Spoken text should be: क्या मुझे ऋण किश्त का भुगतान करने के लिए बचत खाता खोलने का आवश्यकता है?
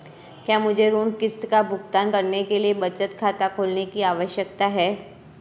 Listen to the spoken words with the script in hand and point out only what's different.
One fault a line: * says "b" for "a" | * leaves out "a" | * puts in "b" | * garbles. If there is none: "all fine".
* says "की" for "का"